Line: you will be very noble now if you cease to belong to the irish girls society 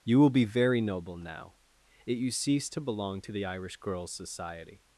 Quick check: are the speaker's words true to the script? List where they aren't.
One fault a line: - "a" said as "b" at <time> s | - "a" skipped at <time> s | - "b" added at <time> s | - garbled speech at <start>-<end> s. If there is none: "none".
- "if" said as "it" at 2.0 s